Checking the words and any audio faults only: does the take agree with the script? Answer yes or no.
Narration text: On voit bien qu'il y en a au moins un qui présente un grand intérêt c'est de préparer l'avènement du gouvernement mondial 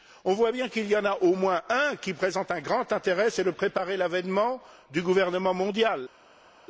yes